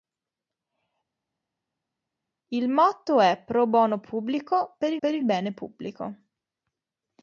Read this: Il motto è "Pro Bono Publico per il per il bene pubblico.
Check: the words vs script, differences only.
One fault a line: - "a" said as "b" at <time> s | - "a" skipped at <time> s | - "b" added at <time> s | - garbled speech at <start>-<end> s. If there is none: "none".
none